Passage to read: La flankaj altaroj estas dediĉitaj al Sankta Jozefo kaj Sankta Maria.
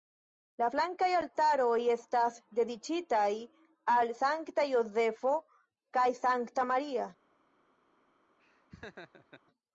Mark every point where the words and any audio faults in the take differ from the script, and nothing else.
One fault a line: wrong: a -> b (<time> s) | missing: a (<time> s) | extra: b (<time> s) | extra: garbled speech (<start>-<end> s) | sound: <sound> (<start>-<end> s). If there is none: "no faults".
sound: laugh (8.4-9.4 s)